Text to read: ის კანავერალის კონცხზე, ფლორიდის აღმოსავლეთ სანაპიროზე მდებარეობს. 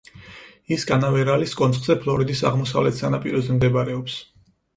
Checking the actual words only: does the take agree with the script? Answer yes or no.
yes